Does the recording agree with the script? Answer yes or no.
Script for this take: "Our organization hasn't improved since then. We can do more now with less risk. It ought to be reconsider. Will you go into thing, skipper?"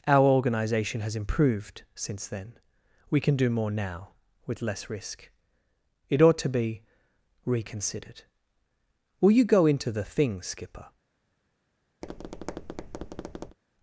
no